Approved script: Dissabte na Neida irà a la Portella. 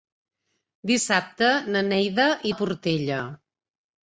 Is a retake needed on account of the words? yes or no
yes